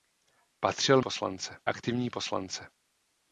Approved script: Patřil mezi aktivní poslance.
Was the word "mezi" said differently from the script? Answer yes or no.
yes